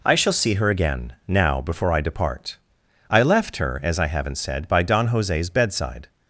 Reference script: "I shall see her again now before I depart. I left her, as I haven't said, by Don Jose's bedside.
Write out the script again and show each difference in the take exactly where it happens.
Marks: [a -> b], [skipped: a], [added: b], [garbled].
"I shall see her again now before I depart. I left her, as I haven't said, by Don Jose's bedside.